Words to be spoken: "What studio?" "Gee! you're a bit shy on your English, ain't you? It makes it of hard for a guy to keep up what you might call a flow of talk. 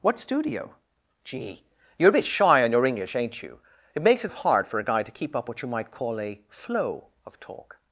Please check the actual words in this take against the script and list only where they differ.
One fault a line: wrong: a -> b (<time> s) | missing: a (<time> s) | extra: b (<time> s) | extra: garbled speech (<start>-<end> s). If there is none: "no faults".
no faults